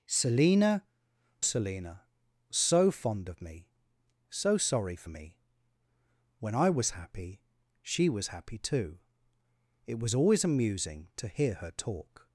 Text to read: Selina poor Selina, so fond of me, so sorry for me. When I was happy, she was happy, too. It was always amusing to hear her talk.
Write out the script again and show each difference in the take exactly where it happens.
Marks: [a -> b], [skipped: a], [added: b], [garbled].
Selina [skipped: poor] Selina, so fond of me, so sorry for me. When I was happy, she was happy, too. It was always amusing to hear her talk.